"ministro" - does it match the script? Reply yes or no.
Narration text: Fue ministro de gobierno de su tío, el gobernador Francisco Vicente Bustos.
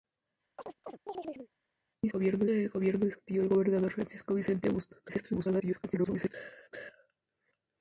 no